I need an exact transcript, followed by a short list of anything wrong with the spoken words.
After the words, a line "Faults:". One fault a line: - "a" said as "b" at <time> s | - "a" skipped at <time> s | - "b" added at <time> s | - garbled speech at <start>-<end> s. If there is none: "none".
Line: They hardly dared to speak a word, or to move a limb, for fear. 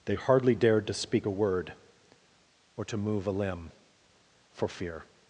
They hardly dared to speak a word, or to move a limb, for fear.
Faults:
none